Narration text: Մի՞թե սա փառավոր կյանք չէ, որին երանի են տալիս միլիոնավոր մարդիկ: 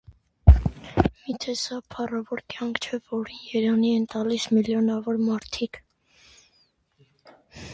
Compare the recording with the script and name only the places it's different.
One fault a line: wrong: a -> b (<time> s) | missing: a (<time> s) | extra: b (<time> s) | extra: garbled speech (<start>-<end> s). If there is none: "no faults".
no faults